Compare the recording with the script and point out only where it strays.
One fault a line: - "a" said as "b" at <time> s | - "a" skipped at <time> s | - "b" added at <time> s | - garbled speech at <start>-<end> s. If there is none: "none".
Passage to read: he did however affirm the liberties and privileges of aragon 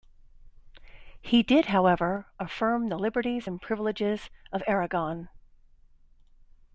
none